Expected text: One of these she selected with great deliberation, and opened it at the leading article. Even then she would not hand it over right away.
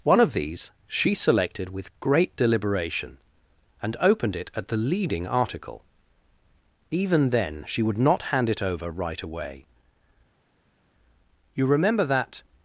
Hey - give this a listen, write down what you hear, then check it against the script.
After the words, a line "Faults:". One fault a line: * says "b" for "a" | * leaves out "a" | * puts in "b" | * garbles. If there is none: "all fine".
One of these she selected with great deliberation, and opened it at the leading article. Even then she would not hand it over right away. "You remember that
Faults:
* puts in "You remember that"